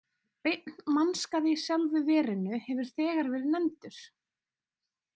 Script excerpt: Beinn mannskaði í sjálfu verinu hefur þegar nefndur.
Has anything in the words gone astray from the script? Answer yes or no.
yes